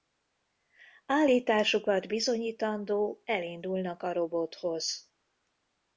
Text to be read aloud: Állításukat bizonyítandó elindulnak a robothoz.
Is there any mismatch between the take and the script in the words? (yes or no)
no